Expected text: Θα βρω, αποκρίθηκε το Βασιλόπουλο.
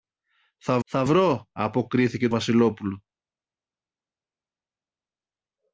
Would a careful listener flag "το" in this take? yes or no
yes